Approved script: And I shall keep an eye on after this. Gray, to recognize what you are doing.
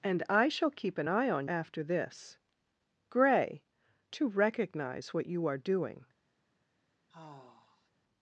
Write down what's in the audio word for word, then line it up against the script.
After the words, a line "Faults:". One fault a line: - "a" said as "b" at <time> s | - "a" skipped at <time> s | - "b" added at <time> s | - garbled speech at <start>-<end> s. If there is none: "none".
And I shall keep an eye on after this. Gray, to recognize what you are doing.
Faults:
none